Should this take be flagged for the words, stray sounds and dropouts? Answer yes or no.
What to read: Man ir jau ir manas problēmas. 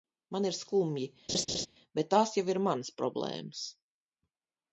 yes